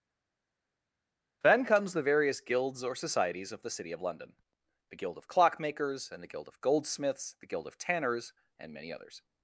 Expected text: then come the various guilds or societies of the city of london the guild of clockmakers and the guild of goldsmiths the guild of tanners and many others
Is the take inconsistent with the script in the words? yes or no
yes